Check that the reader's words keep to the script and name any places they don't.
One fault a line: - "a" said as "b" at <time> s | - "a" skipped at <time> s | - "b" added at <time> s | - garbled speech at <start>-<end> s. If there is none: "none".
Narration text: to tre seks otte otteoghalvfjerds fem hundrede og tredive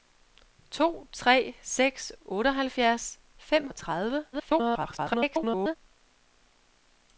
- "otte" skipped at 2.1 s
- "hundrede" skipped at 3.7 s
- garbled speech at 4.3-5.8 s